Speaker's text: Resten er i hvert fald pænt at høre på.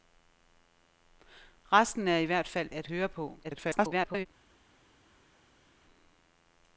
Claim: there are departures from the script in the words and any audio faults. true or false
true